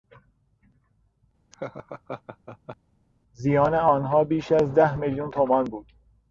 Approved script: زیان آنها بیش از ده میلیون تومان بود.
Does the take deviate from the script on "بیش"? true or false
false